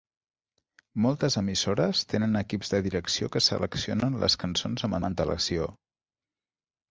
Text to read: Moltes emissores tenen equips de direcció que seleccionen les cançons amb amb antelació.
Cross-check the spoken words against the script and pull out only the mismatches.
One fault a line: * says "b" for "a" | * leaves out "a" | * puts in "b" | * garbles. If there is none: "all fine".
all fine